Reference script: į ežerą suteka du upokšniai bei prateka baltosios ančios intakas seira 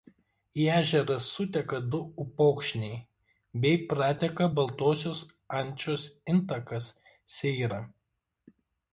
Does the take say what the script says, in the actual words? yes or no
yes